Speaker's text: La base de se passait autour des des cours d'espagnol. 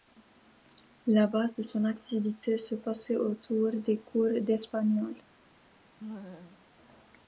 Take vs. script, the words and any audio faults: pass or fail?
fail